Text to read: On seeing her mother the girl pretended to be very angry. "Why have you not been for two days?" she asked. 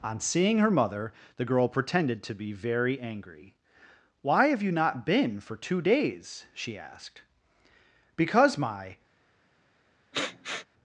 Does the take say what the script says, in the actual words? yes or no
no